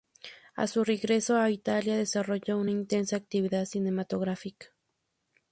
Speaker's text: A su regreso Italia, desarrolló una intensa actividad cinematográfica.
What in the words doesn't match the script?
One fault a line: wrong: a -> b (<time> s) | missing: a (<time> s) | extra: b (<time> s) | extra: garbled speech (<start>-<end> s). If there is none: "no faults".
extra: a (1.4 s)